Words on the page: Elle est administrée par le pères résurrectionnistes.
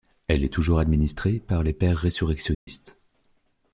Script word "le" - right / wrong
wrong